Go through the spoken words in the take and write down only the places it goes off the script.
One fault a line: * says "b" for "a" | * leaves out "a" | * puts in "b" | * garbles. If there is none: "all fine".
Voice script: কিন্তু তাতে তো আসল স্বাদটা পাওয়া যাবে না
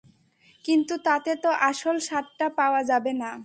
all fine